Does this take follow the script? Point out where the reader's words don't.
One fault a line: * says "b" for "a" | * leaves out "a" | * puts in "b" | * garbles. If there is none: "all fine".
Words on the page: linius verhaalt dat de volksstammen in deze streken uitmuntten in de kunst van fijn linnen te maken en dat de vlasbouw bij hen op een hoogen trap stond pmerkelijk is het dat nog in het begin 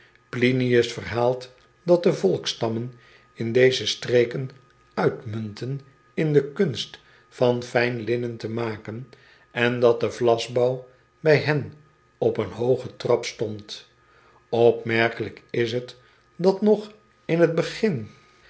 all fine